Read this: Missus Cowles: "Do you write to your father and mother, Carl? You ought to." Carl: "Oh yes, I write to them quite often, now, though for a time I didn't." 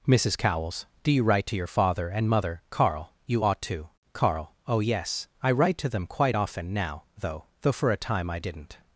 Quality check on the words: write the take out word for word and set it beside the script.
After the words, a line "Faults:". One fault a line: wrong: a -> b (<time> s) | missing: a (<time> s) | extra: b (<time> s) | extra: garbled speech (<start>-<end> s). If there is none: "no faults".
Missus Cowles: "Do you write to your father and mother, Carl? You ought to." Carl: "Oh yes, I write to them quite often, now, though though for a time I didn't."
Faults:
extra: though (7.6 s)